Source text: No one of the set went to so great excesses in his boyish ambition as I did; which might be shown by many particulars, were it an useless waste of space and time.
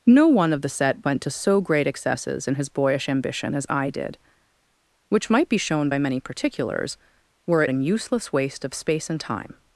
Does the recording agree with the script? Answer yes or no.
yes